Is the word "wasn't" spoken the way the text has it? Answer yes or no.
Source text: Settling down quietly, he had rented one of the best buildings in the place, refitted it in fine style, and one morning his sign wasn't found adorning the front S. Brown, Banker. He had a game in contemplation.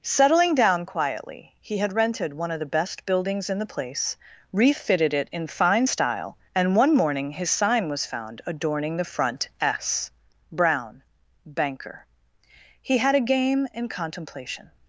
no